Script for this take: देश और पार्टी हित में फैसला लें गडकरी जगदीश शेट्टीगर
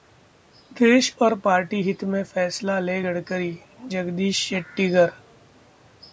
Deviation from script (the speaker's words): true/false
false